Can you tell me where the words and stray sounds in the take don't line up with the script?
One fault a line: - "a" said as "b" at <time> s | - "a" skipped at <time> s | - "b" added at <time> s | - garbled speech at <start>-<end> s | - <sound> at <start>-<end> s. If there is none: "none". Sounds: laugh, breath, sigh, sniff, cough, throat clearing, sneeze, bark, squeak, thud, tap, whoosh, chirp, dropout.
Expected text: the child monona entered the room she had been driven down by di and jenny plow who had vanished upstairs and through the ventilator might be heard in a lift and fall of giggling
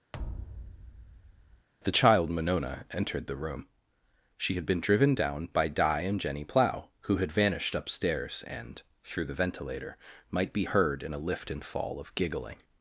- thud at 0.1-1.7 s